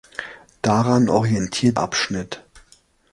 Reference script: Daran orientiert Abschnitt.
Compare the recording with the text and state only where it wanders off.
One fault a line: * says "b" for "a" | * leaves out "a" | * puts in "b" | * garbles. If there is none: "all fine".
all fine